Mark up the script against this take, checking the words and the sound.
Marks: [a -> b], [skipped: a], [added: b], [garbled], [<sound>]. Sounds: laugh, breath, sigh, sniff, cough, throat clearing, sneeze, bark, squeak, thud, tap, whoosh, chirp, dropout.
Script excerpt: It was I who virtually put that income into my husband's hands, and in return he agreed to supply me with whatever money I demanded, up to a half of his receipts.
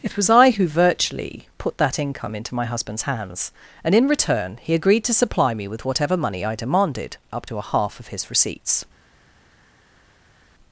It was I who virtually put that income into my husband's hands, and in return he agreed to supply me with whatever money I demanded, up to a half of his receipts.